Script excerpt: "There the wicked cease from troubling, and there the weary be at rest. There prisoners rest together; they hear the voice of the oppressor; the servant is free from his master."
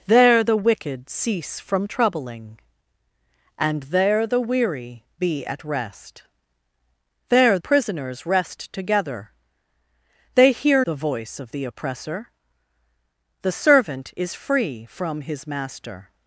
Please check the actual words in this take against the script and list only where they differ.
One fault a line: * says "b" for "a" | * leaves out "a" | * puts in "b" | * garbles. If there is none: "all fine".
all fine